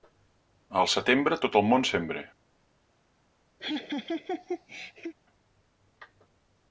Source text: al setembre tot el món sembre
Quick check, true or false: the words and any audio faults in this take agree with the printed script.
false